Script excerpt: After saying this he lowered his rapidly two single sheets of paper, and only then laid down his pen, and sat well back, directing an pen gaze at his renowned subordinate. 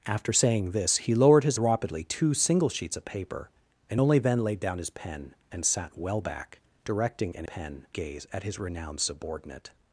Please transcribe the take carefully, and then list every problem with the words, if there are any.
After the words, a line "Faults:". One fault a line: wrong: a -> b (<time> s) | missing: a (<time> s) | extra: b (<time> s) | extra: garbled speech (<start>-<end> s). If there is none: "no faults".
After saying this he lowered his rapidly two single sheets of paper, and only then laid down his pen, and sat well back, directing an pen gaze at his renowned subordinate.
Faults:
no faults